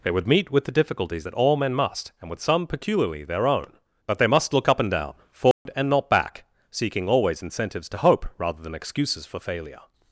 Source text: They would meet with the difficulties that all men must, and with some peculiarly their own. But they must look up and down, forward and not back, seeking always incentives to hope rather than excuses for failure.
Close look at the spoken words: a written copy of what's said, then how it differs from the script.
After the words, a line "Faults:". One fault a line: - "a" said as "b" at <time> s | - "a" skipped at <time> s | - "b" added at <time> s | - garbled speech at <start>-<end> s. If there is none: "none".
They would meet with the difficulties that all men must, and with some peculiarly their own. But they must look up and down, forward and not back, seeking always incentives to hope rather than excuses for failure.
Faults:
none